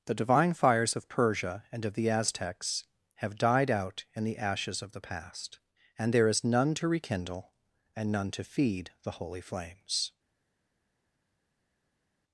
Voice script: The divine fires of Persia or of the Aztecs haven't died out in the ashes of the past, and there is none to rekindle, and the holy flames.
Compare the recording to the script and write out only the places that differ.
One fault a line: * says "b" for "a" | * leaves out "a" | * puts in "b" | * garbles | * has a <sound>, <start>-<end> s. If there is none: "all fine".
* says "and" for "or"
* says "have" for "haven't"
* puts in "none to feed"